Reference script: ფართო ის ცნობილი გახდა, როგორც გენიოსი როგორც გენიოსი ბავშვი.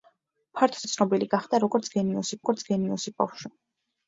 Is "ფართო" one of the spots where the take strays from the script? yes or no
no